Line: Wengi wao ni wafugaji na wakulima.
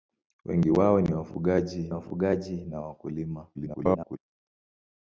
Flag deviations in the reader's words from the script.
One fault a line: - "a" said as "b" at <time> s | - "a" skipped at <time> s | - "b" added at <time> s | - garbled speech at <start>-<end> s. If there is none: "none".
- "wafugaji" added at 1.9 s
- garbled speech at 3.5-4.2 s